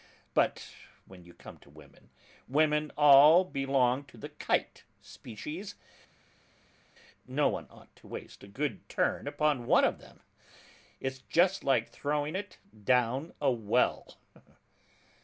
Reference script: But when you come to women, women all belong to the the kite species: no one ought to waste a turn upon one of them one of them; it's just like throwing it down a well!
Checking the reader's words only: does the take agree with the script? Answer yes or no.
no